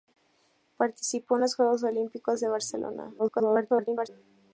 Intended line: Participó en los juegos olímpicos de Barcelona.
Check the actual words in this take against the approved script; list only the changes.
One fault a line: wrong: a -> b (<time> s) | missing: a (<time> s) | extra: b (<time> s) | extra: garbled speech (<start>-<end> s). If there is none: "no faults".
extra: garbled speech (3.2-4.1 s)